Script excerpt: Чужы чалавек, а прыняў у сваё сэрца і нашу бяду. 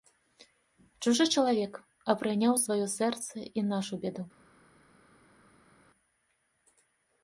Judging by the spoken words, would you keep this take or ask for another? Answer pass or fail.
pass